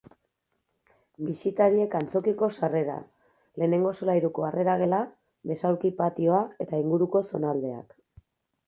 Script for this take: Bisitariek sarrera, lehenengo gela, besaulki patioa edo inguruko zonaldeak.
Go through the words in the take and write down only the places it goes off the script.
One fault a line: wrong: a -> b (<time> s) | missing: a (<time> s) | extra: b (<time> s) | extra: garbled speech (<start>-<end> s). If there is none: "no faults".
extra: antzokiko (2.0 s)
extra: solairuko harrera (4.0 s)
wrong: edo -> eta (6.7 s)